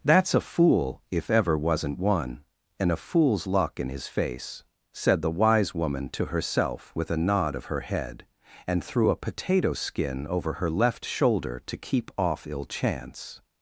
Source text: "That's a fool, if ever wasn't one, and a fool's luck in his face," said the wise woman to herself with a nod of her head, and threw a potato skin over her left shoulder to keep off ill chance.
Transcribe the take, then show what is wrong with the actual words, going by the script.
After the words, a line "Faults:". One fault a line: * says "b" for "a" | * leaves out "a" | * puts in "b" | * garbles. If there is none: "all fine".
"That's a fool, if ever wasn't one, and a fool's luck in his face," said the wise woman to herself with a nod of her head, and threw a potato skin over her left shoulder to keep off ill chance.
Faults:
all fine